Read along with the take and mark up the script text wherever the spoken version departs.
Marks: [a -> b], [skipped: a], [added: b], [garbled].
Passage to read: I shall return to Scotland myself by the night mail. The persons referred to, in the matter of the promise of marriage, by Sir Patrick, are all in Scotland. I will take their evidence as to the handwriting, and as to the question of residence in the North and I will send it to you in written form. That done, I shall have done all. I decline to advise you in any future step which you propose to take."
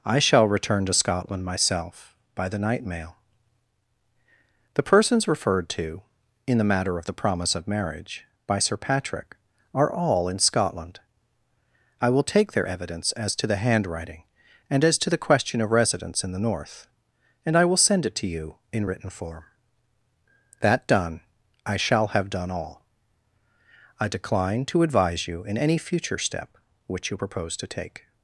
I shall return to Scotland myself by the night mail. The persons referred to, in the matter of the promise of marriage, by Sir Patrick, are all in Scotland. I will take their evidence as to the handwriting, and as to the question of residence in the North and I will send it to you in written form. That done, I shall have done all. I decline to advise you in any future step which you propose to take."